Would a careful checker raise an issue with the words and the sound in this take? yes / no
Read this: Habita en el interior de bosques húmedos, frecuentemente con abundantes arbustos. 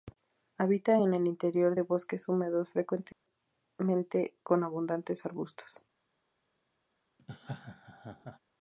yes